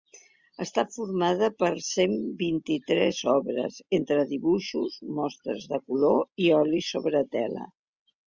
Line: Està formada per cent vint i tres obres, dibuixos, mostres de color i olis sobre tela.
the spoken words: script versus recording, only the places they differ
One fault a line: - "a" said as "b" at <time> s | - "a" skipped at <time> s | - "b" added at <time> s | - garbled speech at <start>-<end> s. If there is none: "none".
- "entre" added at 4.0 s